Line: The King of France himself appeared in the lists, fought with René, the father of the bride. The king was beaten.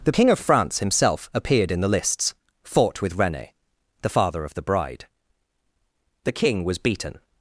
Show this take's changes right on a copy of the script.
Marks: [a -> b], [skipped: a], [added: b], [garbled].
The King of France himself appeared in the lists, fought with René, the father of the bride. The king was beaten.